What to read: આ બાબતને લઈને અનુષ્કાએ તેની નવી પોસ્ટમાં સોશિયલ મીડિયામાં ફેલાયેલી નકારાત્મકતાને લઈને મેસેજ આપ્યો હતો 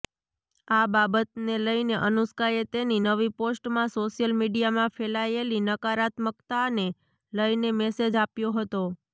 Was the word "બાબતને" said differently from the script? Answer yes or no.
no